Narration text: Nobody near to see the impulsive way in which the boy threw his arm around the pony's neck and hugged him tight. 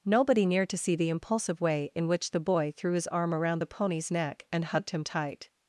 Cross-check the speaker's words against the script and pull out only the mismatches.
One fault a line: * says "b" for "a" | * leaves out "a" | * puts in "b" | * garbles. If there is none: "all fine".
all fine